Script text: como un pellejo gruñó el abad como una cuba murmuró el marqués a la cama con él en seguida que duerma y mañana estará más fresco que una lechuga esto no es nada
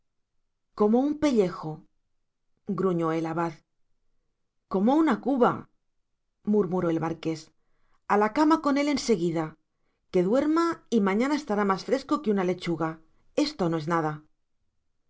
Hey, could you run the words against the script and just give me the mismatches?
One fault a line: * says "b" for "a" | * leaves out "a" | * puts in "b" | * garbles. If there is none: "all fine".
all fine